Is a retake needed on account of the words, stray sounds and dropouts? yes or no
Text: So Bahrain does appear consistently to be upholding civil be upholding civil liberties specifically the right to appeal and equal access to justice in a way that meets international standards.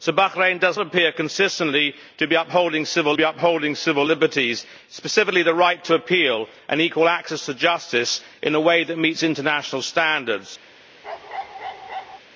yes